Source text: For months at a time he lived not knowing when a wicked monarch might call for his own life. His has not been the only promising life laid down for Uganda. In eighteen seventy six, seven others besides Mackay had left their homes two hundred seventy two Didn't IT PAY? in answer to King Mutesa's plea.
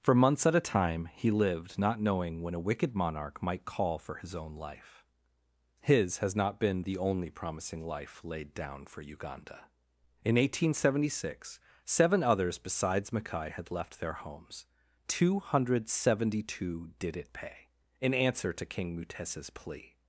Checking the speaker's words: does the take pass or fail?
fail